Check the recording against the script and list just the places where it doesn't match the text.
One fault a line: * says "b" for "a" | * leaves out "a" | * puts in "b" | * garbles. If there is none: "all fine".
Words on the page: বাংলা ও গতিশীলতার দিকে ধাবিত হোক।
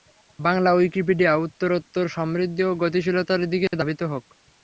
* puts in "উইকিপিডিয়া উত্তরোত্তর সমৃদ্ধি"